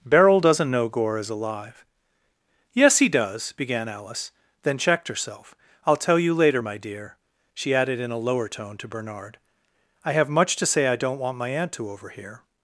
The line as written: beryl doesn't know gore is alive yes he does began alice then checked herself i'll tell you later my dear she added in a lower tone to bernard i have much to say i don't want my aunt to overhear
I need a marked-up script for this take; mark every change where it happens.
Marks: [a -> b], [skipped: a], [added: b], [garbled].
beryl doesn't know gore is alive yes he does began alice then checked herself i'll tell you later my dear she added in a lower tone to bernard i have much to say i don't want my aunt to overhear